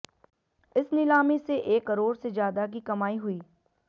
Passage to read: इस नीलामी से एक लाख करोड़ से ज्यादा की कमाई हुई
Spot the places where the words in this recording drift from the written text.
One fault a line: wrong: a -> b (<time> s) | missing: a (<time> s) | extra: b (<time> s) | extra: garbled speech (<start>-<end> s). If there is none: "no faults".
missing: लाख (1.9 s)